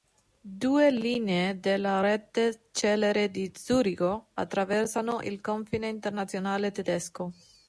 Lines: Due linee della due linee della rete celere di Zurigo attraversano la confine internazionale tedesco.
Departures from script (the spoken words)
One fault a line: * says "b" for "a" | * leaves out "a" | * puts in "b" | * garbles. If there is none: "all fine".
* leaves out "due linee della"
* says "il" for "la"